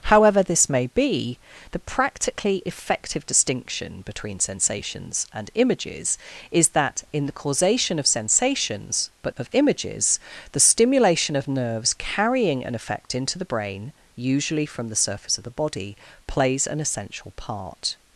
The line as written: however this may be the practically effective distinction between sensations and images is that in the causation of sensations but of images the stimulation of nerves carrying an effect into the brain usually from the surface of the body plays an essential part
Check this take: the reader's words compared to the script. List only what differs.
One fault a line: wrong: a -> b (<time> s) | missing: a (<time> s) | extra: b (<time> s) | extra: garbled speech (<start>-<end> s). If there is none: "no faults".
no faults